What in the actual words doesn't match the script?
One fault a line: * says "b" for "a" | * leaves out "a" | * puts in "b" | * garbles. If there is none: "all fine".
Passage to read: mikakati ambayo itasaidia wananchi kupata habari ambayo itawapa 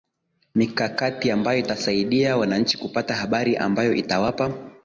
all fine